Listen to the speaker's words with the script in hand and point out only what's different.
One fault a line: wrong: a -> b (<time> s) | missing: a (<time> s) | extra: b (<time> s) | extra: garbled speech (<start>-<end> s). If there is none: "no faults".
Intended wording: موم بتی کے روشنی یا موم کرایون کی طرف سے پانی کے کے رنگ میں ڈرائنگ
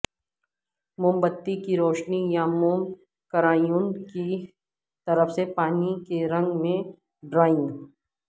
wrong: کے -> کی (1.6 s)
missing: کے (6.2 s)